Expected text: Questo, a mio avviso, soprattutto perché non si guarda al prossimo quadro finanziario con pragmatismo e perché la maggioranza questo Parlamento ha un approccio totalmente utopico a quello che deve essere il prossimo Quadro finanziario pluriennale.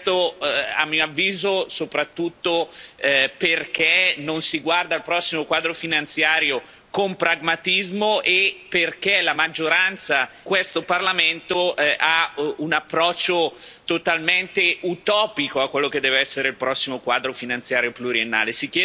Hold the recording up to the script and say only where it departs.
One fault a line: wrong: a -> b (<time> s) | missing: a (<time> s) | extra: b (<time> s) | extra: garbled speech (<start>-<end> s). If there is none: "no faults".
no faults